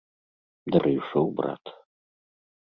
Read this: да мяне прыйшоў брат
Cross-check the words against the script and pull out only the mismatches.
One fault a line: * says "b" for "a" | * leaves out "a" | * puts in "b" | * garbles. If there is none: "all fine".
* leaves out "мяне"